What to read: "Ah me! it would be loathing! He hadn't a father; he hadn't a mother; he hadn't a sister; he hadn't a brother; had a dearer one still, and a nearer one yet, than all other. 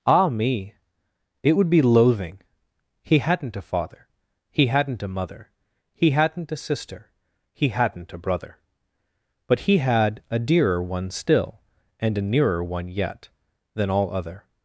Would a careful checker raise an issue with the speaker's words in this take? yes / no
yes